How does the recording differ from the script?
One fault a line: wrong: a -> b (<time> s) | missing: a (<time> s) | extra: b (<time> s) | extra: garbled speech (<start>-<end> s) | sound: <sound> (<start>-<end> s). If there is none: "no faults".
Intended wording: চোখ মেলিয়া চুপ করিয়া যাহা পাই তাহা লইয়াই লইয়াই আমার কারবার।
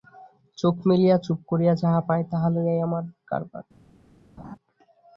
missing: লইয়াই (2.8 s)
sound: laugh (4.4-4.6 s)